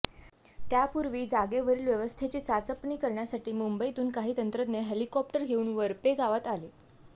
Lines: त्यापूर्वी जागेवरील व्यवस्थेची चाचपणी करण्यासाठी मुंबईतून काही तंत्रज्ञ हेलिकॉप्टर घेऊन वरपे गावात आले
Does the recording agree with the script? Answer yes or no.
yes